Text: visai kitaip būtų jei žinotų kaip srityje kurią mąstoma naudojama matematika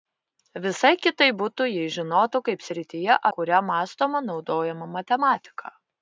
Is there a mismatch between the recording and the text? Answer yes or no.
no